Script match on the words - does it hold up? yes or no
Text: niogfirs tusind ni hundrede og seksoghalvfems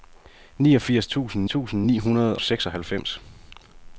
no